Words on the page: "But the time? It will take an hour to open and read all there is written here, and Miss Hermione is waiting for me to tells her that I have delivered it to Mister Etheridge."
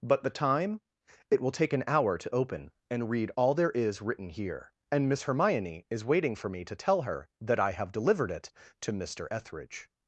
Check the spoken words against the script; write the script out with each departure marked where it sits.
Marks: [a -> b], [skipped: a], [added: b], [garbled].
"But the time? It will take an hour to open and read all there is written here, and Miss Hermione is waiting for me to [tells -> tell] her that I have delivered it to Mister Etheridge."